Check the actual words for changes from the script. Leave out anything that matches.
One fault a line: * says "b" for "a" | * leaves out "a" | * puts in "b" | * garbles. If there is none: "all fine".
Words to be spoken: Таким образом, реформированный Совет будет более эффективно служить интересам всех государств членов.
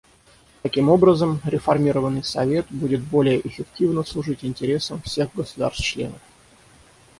all fine